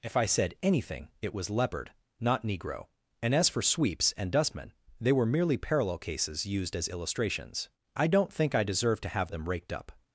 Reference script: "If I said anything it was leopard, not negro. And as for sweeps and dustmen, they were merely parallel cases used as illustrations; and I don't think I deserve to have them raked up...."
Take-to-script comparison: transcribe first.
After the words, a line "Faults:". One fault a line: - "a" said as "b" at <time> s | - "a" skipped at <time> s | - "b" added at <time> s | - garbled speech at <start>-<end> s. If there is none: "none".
"If I said anything it was leopard, not negro. And as for sweeps and dustmen, they were merely parallel cases used as illustrations; I don't think I deserve to have them raked up...."
Faults:
- "and" skipped at 7.7 s